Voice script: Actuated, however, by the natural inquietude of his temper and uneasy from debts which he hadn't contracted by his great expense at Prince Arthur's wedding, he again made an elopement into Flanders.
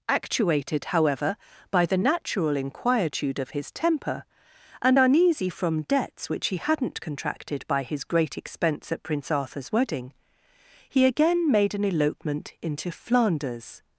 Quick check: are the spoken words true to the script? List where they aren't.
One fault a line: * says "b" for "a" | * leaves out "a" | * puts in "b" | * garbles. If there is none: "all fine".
all fine